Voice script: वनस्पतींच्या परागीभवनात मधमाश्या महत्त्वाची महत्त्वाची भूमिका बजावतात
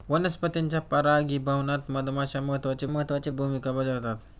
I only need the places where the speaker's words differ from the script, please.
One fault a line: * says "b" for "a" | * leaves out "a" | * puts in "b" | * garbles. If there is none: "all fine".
all fine